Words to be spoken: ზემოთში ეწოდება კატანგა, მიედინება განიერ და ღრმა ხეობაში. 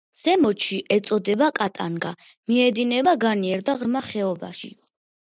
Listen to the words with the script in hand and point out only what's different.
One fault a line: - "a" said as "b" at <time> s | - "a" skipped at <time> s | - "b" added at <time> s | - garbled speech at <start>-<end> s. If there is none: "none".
none